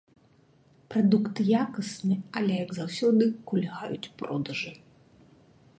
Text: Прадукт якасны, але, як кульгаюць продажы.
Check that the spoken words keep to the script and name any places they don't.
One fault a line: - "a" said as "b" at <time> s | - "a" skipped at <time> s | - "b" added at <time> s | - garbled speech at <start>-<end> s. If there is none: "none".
- "заўсёды" added at 2.8 s